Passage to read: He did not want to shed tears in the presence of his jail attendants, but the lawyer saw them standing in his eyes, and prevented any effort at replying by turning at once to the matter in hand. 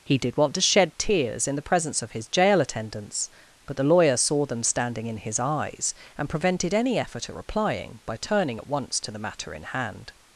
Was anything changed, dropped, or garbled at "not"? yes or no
yes